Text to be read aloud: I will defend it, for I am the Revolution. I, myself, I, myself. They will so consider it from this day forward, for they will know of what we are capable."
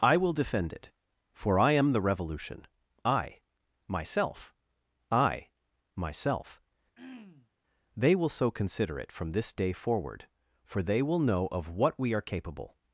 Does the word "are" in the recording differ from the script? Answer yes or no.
no